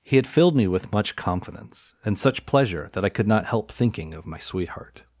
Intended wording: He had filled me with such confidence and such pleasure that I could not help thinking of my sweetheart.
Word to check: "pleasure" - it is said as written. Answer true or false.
true